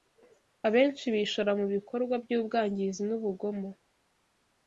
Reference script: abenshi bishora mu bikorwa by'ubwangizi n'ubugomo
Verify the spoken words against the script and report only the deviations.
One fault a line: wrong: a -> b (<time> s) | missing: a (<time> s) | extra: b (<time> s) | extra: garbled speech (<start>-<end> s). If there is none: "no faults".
no faults